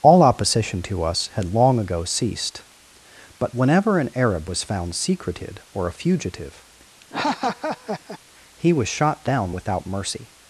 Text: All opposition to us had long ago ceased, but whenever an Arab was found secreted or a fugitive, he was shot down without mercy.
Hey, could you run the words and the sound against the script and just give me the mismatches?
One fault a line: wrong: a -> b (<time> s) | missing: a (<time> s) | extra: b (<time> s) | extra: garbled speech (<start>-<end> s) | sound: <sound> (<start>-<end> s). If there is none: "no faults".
sound: laugh (7.0-8.2 s)